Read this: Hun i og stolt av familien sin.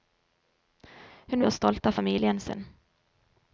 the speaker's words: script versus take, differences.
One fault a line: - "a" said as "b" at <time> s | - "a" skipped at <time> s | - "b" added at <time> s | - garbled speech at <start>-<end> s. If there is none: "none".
none